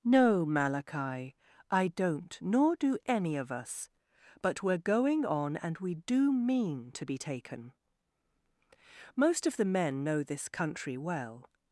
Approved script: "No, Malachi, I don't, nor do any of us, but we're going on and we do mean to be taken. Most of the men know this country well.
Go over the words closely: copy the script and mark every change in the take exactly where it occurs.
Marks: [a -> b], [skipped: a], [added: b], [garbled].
"No, Malachi, I don't, nor do any of us, but we're going on and we do mean to be taken. Most of the men know this country well.